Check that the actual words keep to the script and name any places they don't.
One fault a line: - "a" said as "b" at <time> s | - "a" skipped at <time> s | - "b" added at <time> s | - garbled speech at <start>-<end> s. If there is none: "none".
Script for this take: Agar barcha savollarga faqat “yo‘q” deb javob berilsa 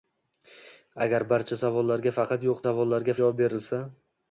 - "deb" said as "savollarga" at 2.6 s